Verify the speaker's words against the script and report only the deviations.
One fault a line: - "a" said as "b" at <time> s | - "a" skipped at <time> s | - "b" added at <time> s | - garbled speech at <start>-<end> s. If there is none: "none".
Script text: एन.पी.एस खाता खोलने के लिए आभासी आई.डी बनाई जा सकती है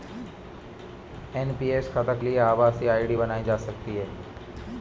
- "खोलने के" skipped at 2.1 s